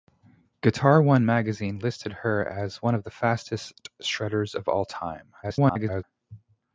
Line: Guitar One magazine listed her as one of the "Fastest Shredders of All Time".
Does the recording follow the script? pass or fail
fail